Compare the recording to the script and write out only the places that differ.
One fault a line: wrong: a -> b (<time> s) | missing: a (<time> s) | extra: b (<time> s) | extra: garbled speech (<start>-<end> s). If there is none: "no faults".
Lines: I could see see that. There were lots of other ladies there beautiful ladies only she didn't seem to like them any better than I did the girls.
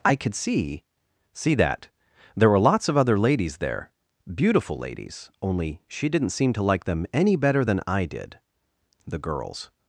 no faults